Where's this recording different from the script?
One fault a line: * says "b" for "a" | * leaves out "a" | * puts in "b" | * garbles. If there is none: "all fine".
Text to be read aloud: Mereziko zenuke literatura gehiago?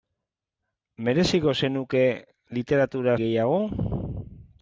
all fine